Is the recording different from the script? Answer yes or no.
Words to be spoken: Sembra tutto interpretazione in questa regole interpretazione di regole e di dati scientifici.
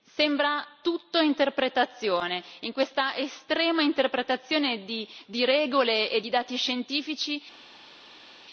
yes